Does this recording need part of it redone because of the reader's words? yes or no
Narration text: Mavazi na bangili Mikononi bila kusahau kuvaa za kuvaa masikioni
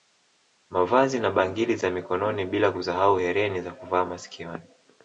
yes